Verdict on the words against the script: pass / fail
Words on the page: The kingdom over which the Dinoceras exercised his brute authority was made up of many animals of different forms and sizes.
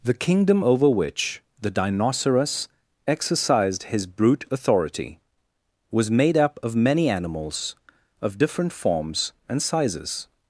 pass